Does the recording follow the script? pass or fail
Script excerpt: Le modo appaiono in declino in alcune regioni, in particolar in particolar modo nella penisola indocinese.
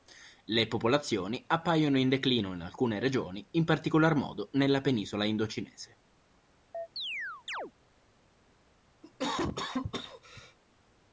fail